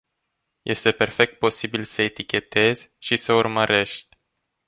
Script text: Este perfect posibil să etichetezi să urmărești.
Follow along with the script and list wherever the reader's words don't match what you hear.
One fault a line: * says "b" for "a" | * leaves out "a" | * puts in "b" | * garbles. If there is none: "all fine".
* puts in "și"